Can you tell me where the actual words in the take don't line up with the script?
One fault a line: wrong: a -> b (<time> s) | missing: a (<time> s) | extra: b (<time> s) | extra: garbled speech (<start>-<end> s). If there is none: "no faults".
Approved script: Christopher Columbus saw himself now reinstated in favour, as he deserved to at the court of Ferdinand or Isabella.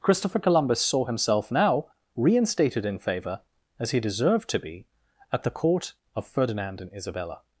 extra: be (4.6 s)
wrong: or -> and (6.8 s)